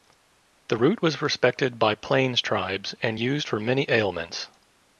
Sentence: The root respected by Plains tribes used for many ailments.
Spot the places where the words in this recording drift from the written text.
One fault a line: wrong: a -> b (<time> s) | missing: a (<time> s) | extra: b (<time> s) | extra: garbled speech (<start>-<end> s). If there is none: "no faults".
extra: was (1.0 s)
extra: and (3.0 s)